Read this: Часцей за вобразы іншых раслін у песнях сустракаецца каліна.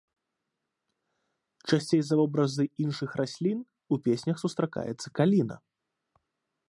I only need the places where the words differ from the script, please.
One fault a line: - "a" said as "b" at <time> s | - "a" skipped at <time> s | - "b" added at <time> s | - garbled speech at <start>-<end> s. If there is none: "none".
none